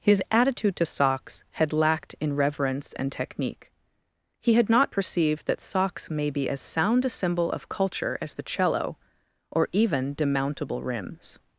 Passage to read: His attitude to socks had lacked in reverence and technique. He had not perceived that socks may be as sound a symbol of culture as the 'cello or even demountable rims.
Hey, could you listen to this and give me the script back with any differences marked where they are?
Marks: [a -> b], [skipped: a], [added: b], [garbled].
His attitude to socks had lacked in reverence and technique. He had not perceived that socks may be as sound a symbol of culture as the 'cello or even demountable rims.